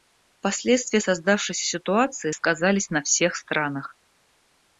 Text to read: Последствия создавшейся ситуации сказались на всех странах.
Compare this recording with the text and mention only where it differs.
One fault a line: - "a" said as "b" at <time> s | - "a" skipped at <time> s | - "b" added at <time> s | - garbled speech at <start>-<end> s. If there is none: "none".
none